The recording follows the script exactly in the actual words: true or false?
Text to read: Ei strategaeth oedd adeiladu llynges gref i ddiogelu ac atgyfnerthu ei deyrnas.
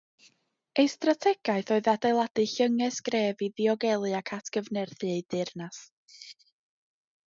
true